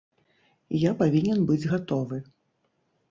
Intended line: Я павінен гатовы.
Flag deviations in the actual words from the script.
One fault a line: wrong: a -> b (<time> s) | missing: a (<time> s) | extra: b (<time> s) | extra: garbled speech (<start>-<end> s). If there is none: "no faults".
extra: быць (1.5 s)